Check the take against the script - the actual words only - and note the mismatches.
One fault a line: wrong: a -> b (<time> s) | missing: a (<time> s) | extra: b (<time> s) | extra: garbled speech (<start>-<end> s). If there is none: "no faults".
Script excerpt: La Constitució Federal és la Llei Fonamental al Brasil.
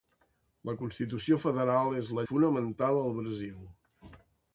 missing: Llei (2.2 s)